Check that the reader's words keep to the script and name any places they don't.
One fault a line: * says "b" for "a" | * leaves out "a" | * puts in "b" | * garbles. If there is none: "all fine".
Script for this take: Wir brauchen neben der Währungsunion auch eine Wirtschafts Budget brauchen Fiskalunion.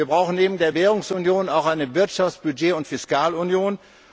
* says "und" for "brauchen"